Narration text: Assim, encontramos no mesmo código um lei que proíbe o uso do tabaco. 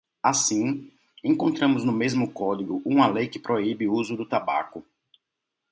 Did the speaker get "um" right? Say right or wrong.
wrong